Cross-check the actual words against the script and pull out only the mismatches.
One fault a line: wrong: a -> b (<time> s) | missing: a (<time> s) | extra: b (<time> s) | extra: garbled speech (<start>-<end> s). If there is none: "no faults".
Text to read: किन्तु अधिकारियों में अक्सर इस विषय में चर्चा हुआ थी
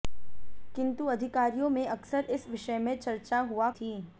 no faults